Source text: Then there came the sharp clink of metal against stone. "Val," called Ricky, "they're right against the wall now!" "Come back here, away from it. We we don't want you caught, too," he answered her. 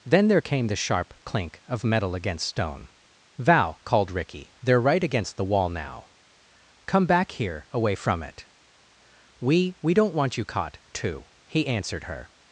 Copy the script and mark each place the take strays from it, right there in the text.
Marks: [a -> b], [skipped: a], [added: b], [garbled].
Then there came the sharp clink of metal against stone. "Val," called Ricky, "they're right against the wall now!" "Come back here, away from it. We we don't want you caught, too," he answered her.